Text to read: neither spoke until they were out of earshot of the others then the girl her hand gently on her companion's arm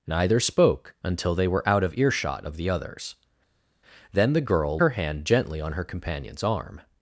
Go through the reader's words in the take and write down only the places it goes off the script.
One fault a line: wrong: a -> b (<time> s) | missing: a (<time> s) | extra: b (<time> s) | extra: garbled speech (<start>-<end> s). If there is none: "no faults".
no faults